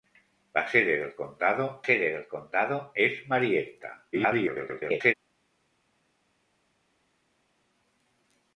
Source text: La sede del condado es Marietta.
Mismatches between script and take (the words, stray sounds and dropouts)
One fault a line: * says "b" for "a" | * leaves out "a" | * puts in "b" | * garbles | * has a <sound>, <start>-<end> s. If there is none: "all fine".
* puts in "sede del condado"
* garbles